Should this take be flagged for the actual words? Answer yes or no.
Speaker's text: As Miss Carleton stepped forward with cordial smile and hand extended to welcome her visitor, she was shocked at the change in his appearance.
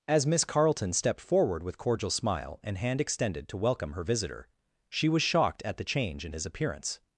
no